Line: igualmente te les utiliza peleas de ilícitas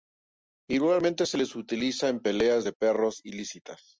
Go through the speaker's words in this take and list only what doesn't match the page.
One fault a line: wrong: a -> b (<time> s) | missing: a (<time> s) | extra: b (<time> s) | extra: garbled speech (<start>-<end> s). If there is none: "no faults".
wrong: te -> se (1.3 s)
extra: en (2.1 s)
extra: perros (2.7 s)